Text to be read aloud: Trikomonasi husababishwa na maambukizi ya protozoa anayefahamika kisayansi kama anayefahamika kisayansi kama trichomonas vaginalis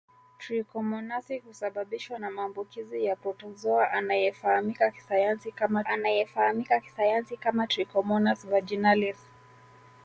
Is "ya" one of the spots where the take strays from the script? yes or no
no